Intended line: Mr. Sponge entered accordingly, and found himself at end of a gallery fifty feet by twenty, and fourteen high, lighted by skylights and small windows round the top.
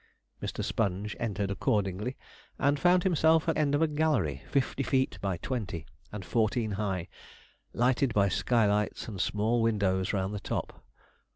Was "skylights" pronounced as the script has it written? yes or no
yes